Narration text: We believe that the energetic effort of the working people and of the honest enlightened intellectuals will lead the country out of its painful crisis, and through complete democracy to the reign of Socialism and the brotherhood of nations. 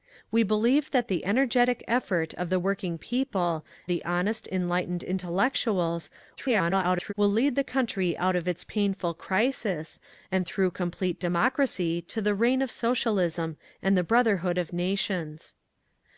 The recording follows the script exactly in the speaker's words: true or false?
false